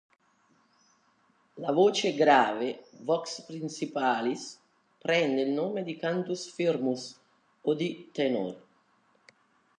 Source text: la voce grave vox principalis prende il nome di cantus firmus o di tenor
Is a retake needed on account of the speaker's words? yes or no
no